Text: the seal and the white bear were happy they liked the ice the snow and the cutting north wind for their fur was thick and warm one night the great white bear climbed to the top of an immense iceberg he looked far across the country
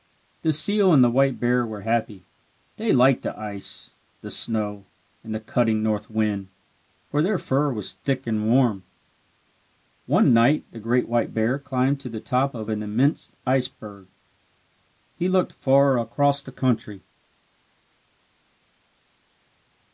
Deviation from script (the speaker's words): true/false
false